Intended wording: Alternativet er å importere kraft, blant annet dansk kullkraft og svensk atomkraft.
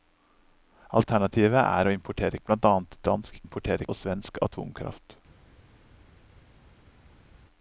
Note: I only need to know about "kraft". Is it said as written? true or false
false